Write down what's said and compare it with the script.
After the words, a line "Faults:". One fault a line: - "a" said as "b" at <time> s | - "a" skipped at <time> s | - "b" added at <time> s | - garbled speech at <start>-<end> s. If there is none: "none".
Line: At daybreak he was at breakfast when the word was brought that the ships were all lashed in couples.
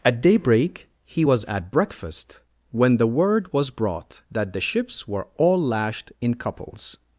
At daybreak he was at breakfast when the word was brought that the ships were all lashed in couples.
Faults:
none